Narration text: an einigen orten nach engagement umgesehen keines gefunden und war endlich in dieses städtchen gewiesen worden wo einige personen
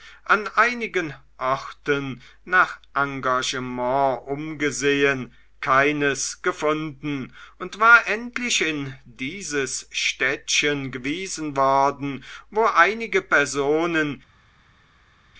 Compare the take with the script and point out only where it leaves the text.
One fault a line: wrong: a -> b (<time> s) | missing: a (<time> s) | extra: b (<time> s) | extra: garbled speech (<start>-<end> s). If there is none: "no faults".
no faults